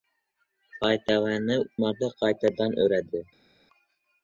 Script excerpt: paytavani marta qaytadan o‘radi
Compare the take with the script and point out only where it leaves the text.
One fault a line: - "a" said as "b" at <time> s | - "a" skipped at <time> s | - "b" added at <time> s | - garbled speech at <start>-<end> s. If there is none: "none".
none